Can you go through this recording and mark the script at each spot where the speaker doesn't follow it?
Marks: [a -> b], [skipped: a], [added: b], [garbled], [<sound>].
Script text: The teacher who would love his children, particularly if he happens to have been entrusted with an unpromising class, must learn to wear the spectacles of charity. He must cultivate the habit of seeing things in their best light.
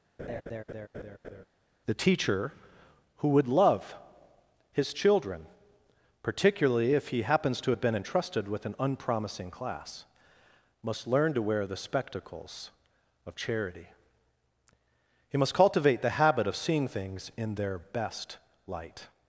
[laugh] The teacher who would love his children, particularly if he happens to have been entrusted with an unpromising class, must learn to wear the spectacles of charity. He must cultivate the habit of seeing things in their best light.